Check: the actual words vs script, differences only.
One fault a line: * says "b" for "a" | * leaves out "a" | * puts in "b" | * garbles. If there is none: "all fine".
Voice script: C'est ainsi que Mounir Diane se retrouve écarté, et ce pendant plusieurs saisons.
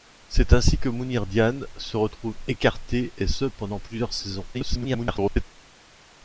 * garbles